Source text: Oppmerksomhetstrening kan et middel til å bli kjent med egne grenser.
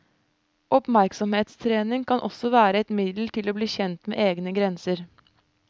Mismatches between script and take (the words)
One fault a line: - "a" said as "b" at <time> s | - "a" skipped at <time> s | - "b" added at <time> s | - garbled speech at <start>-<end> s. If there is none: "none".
- "også være" added at 2.3 s